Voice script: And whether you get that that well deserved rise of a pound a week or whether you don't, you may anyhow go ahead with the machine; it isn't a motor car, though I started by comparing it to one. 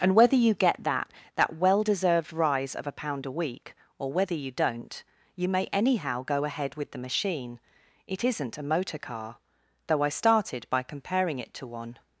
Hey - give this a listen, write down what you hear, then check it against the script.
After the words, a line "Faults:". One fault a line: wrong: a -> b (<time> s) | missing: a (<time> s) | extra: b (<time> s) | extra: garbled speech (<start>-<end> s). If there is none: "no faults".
And whether you get that that well deserved rise of a pound a week or whether you don't, you may anyhow go ahead with the machine; it isn't a motor car, though I started by comparing it to one.
Faults:
no faults